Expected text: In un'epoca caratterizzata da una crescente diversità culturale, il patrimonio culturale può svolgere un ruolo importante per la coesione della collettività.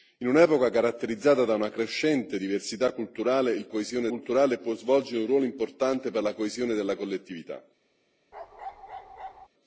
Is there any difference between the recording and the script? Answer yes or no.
yes